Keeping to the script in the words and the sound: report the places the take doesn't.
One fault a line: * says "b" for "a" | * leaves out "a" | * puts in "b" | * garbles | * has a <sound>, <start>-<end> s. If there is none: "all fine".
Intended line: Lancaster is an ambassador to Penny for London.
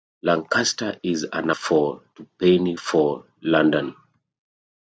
* says "for" for "ambassador"